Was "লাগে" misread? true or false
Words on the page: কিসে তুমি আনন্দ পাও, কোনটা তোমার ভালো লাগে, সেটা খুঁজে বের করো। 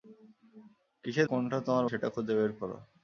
true